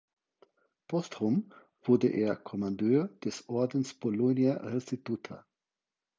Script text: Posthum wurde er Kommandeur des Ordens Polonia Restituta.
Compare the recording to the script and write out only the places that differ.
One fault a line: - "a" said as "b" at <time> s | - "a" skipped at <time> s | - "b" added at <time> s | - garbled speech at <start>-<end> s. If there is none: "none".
none